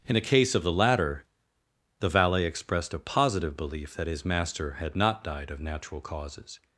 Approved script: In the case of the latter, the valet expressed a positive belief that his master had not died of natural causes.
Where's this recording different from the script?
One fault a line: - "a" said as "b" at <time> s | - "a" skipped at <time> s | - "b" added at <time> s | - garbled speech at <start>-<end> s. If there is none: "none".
none